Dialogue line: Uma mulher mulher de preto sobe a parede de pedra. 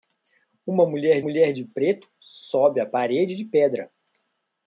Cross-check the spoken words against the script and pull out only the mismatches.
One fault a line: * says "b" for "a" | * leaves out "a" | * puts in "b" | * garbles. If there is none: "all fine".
all fine